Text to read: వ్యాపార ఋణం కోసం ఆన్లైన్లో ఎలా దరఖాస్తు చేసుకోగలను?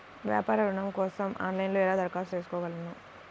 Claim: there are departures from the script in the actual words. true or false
false